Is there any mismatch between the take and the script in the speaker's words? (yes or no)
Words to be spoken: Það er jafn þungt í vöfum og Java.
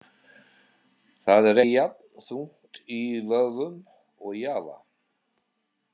no